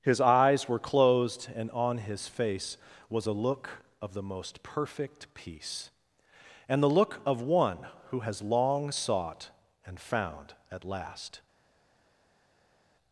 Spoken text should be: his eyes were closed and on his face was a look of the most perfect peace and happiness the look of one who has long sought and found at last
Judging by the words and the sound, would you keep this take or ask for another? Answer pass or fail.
fail